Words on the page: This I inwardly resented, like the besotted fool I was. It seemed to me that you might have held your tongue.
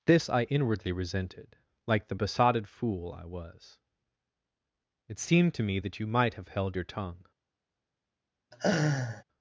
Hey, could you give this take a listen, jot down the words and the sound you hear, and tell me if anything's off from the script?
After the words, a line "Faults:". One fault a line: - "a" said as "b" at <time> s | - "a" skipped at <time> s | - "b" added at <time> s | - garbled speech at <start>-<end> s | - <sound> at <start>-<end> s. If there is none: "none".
This I inwardly resented, like the besotted fool I was. It seemed to me that you might have held your tongue.
Faults:
- laugh at 8.5-9.2 s